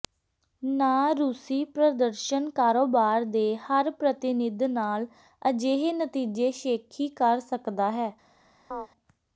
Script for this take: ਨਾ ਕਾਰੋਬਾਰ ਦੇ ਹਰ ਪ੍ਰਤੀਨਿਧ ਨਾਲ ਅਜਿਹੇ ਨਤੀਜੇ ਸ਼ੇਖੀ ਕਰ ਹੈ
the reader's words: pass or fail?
fail